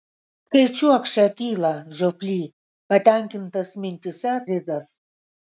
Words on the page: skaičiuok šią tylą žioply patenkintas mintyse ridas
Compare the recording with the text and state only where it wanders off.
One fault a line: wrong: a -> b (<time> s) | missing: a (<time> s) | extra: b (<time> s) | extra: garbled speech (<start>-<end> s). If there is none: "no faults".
no faults